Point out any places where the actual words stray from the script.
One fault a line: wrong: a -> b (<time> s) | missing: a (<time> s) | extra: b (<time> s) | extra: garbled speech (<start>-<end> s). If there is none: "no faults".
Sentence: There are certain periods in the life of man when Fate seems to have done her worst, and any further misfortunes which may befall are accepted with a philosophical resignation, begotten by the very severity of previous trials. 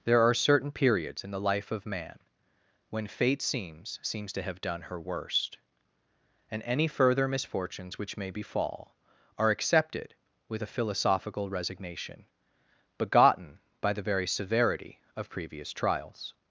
extra: seems (4.0 s)